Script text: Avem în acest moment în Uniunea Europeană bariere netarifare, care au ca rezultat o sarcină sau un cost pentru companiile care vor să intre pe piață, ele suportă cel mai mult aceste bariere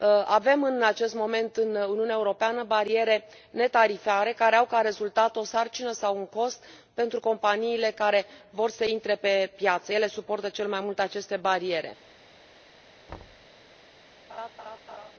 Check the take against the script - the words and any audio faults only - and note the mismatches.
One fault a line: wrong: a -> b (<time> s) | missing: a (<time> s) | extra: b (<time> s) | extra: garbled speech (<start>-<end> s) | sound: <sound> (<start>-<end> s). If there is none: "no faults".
sound: thud (13.1-13.5 s)
sound: laugh (14.3-15.1 s)